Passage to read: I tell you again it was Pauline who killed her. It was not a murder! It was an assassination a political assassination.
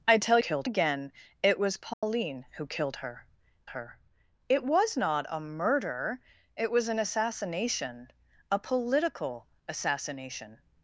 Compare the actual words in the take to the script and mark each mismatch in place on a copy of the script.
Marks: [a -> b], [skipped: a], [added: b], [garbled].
I tell [you -> killed] again it was Pauline who killed her. [added: her] It was not a murder! It was an assassination a political assassination.